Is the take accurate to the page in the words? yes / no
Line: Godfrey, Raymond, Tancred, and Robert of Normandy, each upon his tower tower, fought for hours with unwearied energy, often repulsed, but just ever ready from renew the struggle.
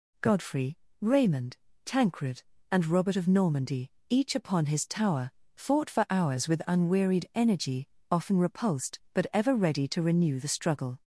no